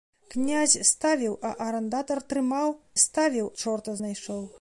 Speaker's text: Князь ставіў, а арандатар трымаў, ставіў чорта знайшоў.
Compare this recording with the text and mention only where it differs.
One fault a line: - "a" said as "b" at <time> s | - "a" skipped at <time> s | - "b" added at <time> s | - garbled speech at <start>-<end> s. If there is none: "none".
none